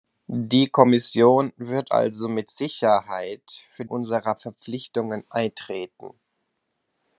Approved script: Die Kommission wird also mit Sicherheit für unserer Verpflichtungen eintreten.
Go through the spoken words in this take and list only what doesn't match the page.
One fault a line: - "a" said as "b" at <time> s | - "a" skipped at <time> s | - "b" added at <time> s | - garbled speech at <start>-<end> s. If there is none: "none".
none